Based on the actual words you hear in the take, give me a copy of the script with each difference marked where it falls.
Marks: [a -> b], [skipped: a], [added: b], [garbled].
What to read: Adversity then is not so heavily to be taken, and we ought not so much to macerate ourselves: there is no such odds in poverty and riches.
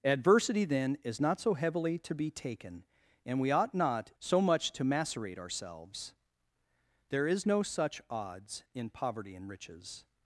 Adversity then is not so heavily to be taken, and we ought not so much to macerate ourselves: there is no such odds in poverty and riches.